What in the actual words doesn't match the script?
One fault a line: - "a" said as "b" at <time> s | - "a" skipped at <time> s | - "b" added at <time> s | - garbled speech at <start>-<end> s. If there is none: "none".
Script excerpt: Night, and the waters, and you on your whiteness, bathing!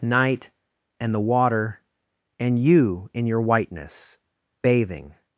- "waters" said as "water" at 1.2 s
- "on" said as "in" at 3.1 s